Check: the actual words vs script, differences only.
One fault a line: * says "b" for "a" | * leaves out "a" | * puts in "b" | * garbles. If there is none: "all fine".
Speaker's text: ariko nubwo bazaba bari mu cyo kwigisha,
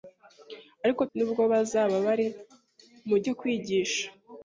all fine